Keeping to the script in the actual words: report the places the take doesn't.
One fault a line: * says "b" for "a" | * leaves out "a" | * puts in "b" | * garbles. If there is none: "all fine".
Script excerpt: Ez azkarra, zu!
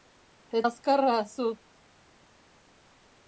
all fine